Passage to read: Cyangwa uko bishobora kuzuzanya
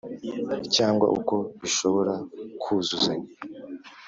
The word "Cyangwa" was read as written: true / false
true